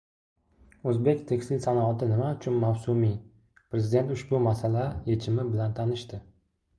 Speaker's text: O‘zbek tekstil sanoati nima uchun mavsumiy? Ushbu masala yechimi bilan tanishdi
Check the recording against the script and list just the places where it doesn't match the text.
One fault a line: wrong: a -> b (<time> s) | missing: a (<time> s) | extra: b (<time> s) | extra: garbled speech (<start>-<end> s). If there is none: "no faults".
extra: Prezident (3.8 s)